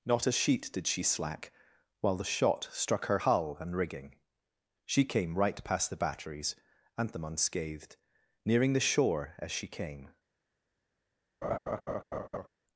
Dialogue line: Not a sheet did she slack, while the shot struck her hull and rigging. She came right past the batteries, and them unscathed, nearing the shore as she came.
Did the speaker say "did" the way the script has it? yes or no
yes